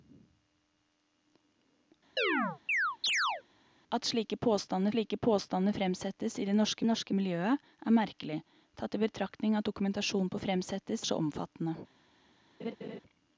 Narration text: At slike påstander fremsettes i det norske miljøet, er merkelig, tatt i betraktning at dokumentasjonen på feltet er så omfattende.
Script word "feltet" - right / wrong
wrong